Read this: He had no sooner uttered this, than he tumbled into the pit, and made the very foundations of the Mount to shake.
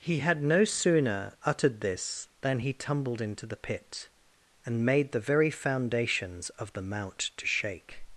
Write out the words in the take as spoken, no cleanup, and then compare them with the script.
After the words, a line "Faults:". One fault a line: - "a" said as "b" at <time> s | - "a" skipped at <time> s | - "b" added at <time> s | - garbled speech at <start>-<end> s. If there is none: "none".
He had no sooner uttered this, than he tumbled into the pit, and made the very foundations of the Mount to shake.
Faults:
none